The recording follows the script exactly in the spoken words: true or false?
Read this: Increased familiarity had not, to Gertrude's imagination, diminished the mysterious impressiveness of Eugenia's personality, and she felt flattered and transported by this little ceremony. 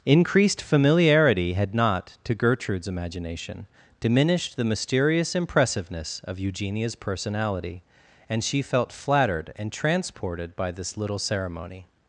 true